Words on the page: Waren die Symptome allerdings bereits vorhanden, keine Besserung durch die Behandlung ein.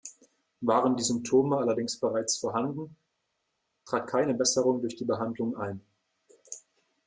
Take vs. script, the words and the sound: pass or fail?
fail